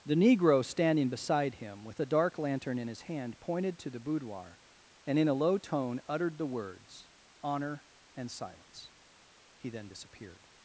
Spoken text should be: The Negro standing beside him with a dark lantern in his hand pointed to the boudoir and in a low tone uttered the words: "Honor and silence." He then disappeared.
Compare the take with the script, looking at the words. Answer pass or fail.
pass